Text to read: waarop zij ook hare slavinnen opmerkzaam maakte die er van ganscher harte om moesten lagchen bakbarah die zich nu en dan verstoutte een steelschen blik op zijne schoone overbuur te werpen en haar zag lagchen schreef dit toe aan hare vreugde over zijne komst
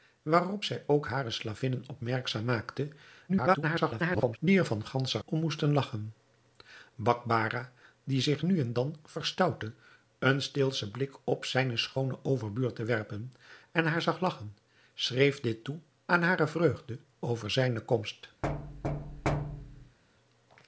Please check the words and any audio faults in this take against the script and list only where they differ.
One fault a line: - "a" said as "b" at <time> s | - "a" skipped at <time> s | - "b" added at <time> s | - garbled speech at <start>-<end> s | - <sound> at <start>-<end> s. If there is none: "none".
- garbled speech at 3.3-4.4 s
- "harte" skipped at 5.2 s
- thud at 18.4-20.0 s